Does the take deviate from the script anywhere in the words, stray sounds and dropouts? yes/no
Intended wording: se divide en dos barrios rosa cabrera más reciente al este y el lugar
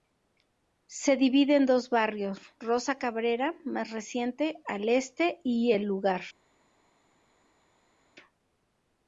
no